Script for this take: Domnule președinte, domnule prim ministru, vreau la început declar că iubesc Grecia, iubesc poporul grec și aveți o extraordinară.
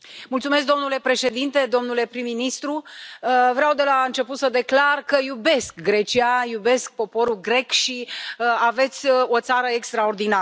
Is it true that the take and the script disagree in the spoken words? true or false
true